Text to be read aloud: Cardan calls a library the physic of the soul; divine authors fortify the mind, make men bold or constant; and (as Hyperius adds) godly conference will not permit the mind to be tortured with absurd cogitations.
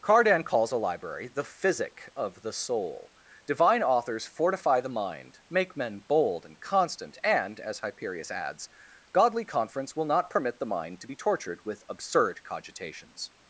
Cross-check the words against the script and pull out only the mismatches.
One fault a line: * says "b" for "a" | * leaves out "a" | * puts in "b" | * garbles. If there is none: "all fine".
* says "and" for "or"